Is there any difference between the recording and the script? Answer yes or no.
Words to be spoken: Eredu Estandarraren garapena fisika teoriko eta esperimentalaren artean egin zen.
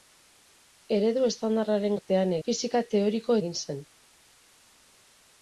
yes